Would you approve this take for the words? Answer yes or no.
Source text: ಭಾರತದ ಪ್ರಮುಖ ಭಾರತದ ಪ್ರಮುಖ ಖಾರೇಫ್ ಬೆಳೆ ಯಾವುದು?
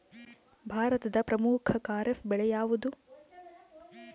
no